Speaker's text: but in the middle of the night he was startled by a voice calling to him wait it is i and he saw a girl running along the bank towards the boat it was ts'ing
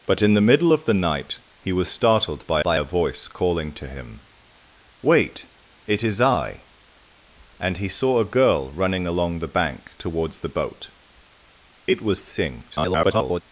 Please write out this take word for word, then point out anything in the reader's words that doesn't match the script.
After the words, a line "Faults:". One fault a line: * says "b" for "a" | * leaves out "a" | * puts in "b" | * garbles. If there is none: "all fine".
but in the middle of the night he was startled by by a voice calling to him wait it is i and he saw a girl running along the bank towards the boat it was ts'ing [garbled]
Faults:
* puts in "by"
* garbles